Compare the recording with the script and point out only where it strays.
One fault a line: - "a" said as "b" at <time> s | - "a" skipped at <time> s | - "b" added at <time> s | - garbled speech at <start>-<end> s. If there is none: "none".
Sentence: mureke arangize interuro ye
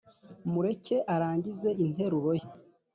none